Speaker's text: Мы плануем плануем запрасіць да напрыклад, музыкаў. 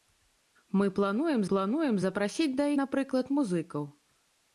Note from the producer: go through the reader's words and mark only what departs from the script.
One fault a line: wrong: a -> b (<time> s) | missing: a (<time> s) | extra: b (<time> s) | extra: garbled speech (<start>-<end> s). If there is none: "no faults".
no faults